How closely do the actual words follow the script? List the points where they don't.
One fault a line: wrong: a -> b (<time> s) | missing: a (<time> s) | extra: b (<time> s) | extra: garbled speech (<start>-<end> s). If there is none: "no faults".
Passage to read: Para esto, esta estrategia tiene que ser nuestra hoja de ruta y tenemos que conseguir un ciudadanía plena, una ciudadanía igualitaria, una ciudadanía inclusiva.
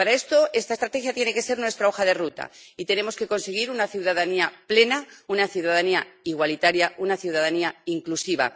wrong: un -> una (3.7 s)